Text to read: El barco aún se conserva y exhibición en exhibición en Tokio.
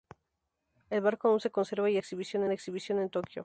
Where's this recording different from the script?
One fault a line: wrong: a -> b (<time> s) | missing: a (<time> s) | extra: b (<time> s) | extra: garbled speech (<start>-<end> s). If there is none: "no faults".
no faults